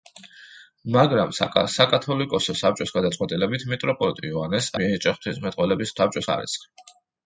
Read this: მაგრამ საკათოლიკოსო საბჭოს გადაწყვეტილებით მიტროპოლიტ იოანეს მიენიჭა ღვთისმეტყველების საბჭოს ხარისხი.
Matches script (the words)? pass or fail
pass